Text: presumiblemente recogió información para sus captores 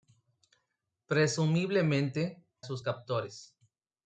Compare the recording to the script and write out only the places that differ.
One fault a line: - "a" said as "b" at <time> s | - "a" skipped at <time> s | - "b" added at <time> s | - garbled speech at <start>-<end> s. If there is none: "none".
- "recogió información para" skipped at 2.4 s